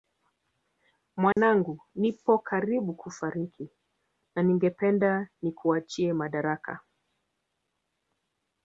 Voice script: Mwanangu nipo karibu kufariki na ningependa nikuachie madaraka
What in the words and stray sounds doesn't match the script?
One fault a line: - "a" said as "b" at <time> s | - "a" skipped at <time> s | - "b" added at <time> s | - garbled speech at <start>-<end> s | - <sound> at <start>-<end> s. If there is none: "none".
- dropout at 1.3-1.4 s